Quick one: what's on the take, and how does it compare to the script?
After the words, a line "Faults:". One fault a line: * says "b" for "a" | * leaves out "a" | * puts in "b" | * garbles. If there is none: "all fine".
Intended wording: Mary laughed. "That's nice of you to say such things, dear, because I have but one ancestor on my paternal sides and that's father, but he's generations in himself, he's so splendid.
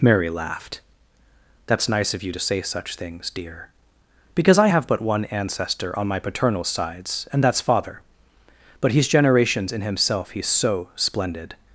Mary laughed. "That's nice of you to say such things, dear, because I have but one ancestor on my paternal sides and that's father, but he's generations in himself, he's so splendid.
Faults:
all fine